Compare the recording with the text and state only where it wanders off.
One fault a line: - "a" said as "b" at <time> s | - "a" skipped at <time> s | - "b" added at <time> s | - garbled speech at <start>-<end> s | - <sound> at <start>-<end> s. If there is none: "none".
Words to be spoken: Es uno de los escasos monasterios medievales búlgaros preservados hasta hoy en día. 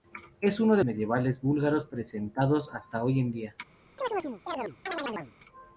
- "los escasos monasterios" skipped at 0.8 s
- chirp at 4.0-5.3 s